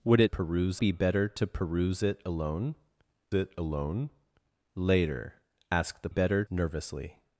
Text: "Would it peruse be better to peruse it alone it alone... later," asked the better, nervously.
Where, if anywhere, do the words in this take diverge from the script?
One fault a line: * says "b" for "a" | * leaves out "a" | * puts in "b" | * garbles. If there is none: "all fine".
all fine